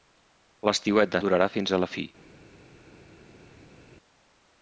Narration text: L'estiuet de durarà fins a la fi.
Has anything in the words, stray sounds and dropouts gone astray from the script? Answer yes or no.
no